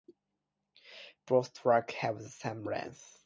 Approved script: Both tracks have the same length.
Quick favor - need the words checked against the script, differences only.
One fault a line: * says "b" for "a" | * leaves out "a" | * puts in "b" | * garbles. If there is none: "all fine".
all fine